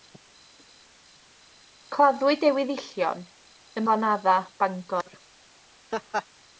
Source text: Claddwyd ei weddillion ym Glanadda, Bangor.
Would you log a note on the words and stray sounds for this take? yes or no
yes